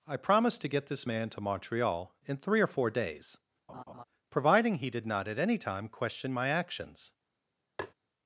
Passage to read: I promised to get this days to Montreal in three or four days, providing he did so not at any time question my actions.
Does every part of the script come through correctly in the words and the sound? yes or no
no